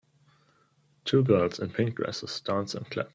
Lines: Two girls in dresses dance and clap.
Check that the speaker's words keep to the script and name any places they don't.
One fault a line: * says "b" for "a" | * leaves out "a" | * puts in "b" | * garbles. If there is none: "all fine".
* puts in "pink"